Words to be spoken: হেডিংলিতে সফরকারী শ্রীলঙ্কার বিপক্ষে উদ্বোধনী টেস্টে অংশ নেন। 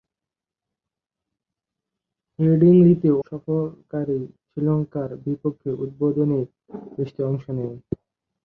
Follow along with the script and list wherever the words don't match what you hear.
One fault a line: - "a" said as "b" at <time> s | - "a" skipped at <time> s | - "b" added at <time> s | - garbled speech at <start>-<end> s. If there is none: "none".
none